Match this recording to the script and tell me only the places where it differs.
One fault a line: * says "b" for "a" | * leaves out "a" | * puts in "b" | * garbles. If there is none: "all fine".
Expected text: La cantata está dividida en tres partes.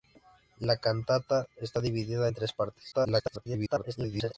* garbles